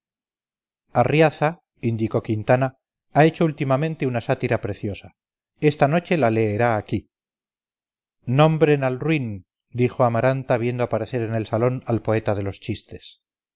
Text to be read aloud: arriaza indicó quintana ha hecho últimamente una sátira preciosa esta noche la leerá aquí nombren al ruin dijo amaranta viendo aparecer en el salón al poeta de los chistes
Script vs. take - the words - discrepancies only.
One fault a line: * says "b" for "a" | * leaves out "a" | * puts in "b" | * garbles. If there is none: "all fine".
all fine